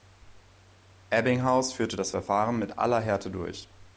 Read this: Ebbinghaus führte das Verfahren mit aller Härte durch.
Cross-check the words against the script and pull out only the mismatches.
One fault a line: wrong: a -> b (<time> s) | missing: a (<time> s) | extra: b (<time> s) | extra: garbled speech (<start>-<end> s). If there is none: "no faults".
no faults